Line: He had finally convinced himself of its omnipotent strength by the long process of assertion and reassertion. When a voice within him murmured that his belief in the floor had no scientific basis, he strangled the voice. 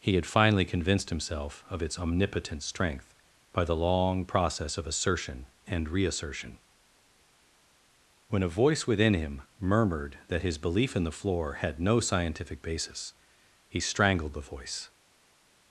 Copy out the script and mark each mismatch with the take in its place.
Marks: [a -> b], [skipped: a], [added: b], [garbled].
He had finally convinced himself of its omnipotent strength by the long process of assertion and reassertion. When a voice within him murmured that his belief in the floor had no scientific basis, he strangled the voice.